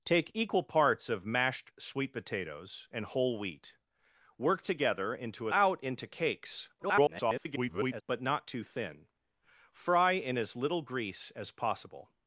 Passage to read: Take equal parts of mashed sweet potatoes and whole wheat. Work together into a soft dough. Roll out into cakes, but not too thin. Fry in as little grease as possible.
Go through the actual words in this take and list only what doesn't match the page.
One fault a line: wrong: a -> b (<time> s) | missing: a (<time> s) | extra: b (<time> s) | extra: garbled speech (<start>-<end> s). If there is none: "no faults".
missing: soft dough Roll (5.5 s)
extra: garbled speech (6.8-8.0 s)